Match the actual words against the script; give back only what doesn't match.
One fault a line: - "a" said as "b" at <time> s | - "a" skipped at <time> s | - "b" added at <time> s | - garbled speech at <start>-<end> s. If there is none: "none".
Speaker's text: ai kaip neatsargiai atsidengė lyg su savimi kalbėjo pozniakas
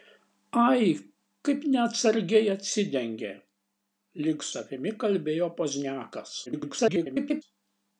- "su" skipped at 4.5 s
- garbled speech at 6.5-7.4 s